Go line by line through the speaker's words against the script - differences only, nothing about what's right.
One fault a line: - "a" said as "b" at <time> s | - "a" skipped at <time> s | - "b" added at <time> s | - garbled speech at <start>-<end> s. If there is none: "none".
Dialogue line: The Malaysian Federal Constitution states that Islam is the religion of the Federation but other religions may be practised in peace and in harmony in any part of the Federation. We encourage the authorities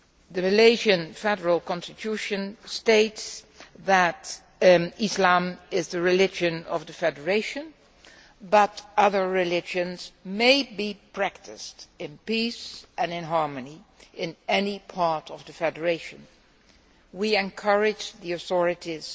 none